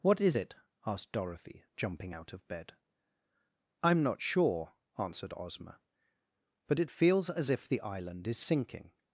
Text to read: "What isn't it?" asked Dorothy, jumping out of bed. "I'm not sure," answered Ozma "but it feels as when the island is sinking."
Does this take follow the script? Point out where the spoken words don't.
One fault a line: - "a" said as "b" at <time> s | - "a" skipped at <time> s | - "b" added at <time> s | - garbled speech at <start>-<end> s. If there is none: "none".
- "isn't" said as "is" at 0.2 s
- "when" said as "if" at 7.5 s